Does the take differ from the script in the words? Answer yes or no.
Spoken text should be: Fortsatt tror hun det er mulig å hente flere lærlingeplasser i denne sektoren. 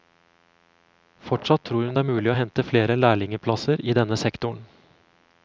no